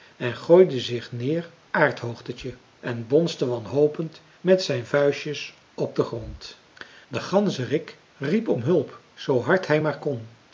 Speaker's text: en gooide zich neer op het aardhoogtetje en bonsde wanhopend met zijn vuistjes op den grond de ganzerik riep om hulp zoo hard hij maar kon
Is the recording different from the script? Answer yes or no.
yes